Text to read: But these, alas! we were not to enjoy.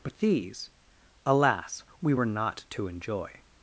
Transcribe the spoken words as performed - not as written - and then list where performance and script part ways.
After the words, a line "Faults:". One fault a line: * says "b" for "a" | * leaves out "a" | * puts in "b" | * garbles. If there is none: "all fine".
But these, alas! we were not to enjoy.
Faults:
all fine